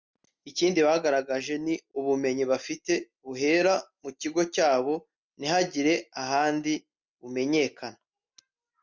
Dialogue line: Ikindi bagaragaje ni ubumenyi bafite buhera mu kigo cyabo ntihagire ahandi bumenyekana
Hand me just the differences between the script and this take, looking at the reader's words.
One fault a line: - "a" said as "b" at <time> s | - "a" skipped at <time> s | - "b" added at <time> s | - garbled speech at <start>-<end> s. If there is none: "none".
none